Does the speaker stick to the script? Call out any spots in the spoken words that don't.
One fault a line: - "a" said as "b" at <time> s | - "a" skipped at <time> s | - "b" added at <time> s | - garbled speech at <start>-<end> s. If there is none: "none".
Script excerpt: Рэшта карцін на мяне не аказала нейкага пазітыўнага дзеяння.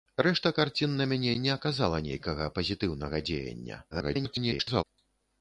- garbled speech at 3.9-4.8 s